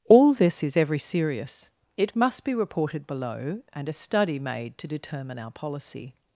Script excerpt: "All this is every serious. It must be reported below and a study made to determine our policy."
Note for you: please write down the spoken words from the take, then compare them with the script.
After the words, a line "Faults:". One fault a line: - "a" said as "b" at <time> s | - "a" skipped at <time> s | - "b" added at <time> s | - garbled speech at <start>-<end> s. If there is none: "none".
"All this is every serious. It must be reported below and a study made to determine our policy."
Faults:
none